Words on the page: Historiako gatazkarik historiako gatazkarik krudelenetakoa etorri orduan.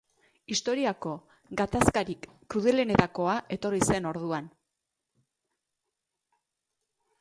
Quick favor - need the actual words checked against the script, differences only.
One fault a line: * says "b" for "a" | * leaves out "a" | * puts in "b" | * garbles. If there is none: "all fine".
* leaves out "historiako gatazkarik"
* puts in "zen"